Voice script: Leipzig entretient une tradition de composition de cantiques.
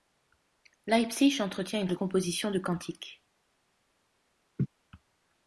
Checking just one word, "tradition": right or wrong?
wrong